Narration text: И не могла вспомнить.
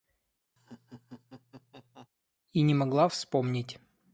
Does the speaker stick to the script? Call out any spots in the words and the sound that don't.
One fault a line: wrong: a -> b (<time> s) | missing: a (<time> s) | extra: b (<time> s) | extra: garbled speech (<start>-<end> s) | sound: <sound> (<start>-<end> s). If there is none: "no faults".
sound: laugh (0.6-2.1 s)